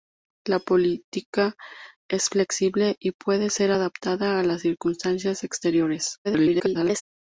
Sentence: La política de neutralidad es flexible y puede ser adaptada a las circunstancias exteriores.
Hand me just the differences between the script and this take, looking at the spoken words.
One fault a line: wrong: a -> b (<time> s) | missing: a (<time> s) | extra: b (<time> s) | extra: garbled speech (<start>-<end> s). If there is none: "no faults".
missing: de neutralidad (1.5 s)
extra: garbled speech (6.2-7.0 s)